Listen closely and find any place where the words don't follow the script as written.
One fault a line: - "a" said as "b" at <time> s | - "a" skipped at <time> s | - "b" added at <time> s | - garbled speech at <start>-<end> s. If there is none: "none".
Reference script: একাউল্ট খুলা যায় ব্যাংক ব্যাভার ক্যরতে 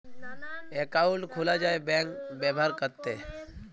none